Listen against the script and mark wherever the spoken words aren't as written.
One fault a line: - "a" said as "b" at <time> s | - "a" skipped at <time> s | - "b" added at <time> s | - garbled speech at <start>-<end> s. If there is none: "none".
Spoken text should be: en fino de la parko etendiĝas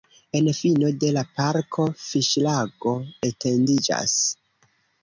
- "fiŝlago" added at 2.1 s